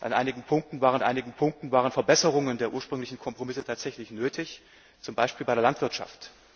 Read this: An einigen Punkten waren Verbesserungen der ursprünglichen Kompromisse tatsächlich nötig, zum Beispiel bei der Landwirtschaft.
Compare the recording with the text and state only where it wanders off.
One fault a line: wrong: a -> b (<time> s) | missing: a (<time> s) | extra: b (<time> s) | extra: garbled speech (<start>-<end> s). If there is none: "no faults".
extra: einigen Punkten waren (1.0 s)